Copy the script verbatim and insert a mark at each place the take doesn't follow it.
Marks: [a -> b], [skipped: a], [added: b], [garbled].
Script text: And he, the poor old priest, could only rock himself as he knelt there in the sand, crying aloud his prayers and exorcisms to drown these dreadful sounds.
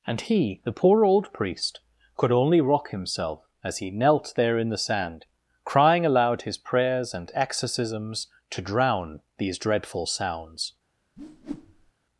And he, the poor old priest, could only rock himself as he knelt there in the sand, crying aloud his prayers and exorcisms to drown these dreadful sounds.